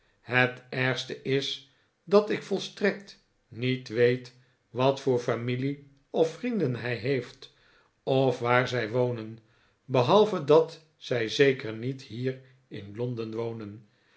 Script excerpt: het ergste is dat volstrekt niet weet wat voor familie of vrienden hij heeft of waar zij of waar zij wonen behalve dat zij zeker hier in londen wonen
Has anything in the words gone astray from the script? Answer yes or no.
yes